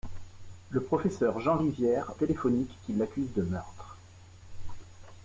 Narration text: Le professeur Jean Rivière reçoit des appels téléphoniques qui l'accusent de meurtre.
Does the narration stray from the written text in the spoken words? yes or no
yes